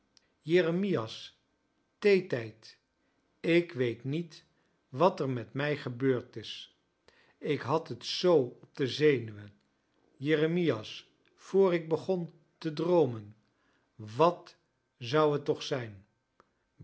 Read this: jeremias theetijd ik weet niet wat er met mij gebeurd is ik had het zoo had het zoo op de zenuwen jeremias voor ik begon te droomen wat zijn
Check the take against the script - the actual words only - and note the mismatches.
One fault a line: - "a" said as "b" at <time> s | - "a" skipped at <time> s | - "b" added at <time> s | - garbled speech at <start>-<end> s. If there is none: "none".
- "had het zoo" skipped at 8.4 s
- "zou het toch" added at 15.0 s